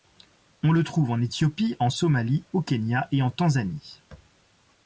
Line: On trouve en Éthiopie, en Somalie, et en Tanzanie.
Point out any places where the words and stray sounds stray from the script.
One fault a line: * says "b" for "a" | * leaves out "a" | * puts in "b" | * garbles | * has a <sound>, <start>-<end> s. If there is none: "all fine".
* puts in "le"
* puts in "au Kenya"